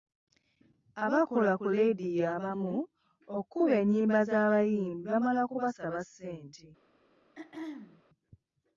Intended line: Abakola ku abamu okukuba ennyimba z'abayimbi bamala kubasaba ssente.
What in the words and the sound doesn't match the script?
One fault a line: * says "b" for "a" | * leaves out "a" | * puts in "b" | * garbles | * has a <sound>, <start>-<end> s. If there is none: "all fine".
* puts in "leediyo"
* has a throat clearing, 7.4-8.0 s